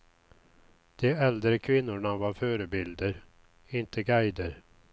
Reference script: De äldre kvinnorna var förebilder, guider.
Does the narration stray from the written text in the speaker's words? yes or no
yes